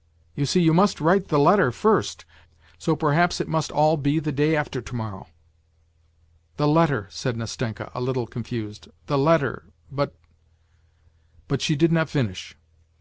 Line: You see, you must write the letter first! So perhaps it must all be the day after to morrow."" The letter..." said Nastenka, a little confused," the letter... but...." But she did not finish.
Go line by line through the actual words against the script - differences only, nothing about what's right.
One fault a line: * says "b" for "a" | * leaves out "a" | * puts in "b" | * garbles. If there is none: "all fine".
all fine